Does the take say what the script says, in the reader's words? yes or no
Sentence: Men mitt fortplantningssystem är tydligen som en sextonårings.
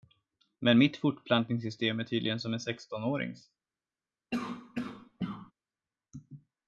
yes